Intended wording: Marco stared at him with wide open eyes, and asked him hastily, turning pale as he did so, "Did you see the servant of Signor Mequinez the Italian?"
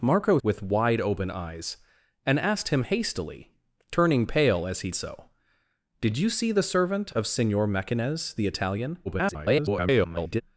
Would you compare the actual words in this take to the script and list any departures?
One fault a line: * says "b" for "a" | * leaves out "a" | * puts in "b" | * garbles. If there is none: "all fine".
* leaves out "stared at him"
* leaves out "did"
* garbles